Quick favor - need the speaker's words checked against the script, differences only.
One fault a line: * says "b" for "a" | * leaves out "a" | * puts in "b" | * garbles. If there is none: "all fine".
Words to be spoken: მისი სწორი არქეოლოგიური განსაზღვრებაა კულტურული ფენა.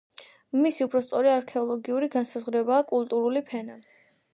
* puts in "უფრო"